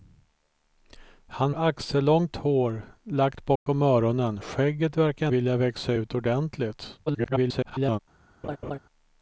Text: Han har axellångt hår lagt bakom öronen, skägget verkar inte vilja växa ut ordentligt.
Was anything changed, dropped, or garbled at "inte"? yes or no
yes